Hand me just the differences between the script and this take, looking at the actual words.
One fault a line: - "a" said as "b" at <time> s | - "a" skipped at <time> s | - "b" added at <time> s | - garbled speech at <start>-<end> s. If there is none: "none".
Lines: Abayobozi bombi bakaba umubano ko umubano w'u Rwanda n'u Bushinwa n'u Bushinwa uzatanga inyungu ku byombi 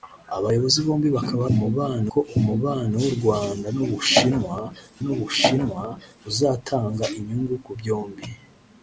none